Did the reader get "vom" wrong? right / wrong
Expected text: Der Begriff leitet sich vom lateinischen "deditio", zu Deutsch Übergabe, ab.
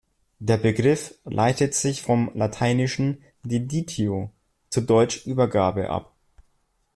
right